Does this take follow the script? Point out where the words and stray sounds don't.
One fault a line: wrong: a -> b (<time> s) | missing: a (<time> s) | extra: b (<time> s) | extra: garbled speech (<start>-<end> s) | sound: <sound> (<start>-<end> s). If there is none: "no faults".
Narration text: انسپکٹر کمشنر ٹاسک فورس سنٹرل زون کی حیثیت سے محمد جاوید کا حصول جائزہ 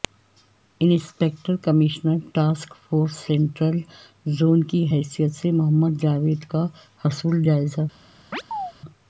sound: chirp (8.3-8.7 s)